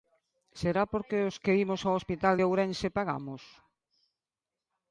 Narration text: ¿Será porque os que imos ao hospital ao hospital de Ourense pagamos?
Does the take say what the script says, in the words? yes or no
no